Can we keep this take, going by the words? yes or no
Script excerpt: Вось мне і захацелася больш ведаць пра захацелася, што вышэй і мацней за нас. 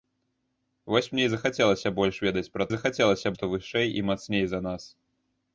yes